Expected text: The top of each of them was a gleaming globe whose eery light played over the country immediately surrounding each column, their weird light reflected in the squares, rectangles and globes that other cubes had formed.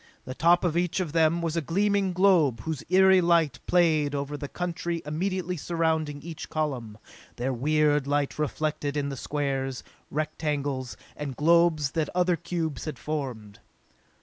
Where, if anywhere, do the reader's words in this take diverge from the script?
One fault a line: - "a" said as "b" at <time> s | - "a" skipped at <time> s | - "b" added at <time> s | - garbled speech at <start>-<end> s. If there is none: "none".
none